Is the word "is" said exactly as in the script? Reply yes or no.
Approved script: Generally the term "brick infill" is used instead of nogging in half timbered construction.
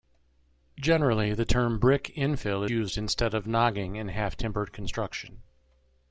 no